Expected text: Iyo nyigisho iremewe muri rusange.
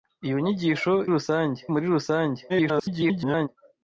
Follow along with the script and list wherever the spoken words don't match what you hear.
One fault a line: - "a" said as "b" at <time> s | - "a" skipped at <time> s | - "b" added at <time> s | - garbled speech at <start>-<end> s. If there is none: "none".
- "iremewe" said as "rusange" at 1.1 s
- garbled speech at 2.5-3.5 s